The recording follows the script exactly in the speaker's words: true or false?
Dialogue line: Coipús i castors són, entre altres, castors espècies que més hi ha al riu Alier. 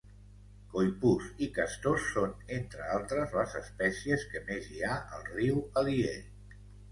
false